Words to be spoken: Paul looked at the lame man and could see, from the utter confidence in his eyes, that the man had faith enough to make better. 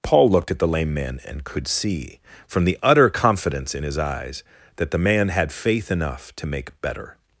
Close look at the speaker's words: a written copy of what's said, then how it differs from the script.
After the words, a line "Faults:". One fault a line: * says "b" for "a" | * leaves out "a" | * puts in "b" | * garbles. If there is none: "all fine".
Paul looked at the lame man and could see, from the utter confidence in his eyes, that the man had faith enough to make better.
Faults:
all fine